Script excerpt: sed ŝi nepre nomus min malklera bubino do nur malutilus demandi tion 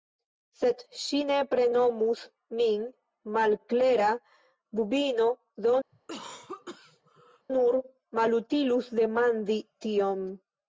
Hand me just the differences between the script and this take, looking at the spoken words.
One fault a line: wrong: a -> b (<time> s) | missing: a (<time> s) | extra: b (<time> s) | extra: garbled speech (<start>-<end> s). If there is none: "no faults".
no faults